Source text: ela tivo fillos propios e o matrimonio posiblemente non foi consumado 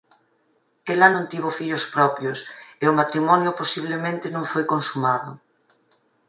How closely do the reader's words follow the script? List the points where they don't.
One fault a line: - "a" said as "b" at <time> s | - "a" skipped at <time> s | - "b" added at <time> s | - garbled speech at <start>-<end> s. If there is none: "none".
- "non" added at 1.1 s